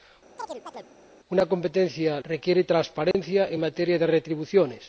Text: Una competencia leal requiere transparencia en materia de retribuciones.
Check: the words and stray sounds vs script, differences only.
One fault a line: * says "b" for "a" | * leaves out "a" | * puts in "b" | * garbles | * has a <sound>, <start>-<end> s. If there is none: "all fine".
* has a chirp, 0.4-0.9 s
* leaves out "leal"
* has a dropout, 3.1-3.1 s